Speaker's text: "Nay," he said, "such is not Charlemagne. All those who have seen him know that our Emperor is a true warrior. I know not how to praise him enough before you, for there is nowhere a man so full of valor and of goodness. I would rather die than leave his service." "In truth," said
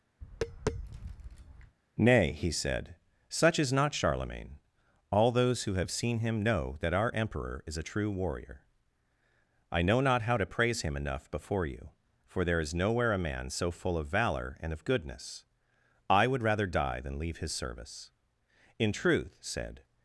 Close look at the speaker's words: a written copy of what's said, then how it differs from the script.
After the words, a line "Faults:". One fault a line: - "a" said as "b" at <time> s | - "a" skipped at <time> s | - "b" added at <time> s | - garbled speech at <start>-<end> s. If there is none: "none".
"Nay," he said, "such is not Charlemagne. All those who have seen him know that our Emperor is a true warrior. I know not how to praise him enough before you, for there is nowhere a man so full of valor and of goodness. I would rather die than leave his service." "In truth," said
Faults:
none